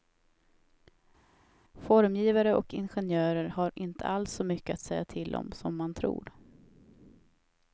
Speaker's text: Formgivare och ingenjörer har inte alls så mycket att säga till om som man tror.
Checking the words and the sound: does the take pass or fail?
pass